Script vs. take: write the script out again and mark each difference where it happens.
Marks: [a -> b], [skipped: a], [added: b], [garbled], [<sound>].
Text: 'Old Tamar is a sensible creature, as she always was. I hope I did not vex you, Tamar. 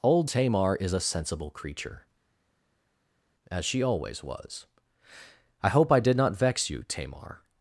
'Old Tamar is a sensible creature, as she always was. I hope I did not vex you, Tamar.